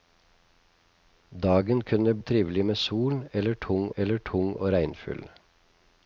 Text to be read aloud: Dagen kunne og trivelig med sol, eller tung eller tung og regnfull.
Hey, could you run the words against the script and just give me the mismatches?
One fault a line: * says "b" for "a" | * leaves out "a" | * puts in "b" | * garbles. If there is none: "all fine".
all fine